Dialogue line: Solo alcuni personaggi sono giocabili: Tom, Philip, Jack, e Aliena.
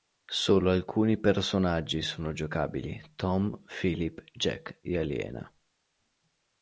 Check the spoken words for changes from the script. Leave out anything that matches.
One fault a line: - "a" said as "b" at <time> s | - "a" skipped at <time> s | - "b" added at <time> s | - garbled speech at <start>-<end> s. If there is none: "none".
none